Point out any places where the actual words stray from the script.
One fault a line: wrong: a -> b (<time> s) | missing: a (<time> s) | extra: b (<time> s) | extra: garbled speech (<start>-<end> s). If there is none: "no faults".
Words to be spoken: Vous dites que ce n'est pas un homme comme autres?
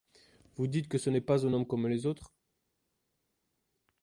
extra: les (1.9 s)